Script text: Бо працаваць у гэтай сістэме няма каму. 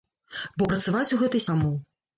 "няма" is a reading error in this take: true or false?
true